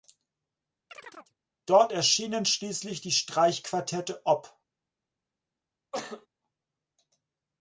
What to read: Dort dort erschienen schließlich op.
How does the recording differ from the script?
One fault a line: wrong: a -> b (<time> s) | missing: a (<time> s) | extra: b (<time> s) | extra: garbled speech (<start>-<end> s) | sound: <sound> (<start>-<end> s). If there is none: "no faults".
sound: chirp (0.9-1.3 s)
missing: dort (1.9 s)
extra: die Streichquartette (3.0 s)
sound: cough (5.9-6.3 s)